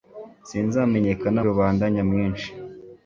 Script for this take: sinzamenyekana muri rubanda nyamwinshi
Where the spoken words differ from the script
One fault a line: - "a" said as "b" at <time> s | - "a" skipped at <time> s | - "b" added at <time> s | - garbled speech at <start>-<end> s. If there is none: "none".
- "muri" skipped at 1.4 s